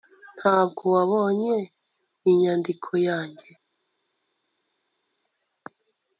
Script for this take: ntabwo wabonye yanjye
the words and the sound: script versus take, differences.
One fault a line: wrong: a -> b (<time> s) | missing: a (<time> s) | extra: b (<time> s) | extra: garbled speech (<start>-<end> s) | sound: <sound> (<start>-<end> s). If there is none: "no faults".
extra: inyandiko (2.3 s)